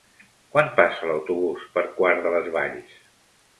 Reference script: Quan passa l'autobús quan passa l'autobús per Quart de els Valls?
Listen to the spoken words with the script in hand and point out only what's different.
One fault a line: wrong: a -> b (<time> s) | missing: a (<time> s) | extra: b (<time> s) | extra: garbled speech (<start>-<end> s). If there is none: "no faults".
missing: quan passa l'autobús (1.7 s)
wrong: els -> les (2.4 s)